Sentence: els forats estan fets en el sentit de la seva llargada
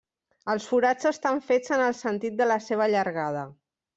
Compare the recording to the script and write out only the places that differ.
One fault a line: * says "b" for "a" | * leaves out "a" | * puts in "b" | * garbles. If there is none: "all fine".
all fine